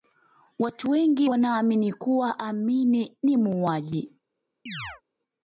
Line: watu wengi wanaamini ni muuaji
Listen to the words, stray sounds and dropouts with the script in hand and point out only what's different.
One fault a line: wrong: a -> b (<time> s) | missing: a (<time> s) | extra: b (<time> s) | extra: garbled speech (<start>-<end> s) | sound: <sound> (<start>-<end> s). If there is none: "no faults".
extra: kuwa amin (1.9 s)
sound: chirp (4.7-5.0 s)